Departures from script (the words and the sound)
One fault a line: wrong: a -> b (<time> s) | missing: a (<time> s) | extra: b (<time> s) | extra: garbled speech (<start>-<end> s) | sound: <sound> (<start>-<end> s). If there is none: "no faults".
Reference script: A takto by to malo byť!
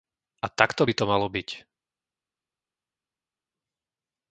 no faults